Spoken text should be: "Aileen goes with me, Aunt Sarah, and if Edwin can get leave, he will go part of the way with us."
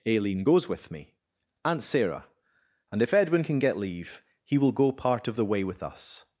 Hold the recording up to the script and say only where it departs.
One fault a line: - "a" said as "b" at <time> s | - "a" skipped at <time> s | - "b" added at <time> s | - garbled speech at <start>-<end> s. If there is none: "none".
none